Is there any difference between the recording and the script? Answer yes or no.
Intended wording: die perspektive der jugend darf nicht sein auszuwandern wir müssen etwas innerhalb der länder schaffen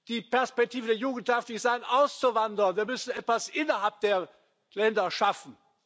no